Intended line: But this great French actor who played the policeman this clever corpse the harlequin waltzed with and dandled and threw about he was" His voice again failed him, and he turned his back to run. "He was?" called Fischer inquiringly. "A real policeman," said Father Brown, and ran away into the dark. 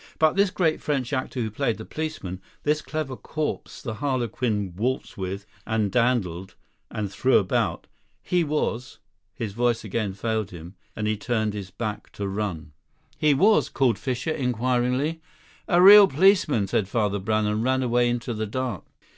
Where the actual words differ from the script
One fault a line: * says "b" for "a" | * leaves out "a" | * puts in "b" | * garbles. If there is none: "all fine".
all fine